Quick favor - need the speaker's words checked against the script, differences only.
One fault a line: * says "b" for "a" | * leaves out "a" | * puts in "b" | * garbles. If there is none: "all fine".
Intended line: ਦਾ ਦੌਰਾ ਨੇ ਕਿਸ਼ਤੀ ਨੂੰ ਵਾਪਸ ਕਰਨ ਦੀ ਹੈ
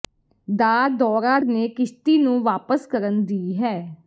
all fine